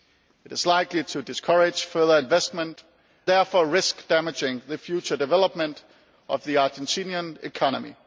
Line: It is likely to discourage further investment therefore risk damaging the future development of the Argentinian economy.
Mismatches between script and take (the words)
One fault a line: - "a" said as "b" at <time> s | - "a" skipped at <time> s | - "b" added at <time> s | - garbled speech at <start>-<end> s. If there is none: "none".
none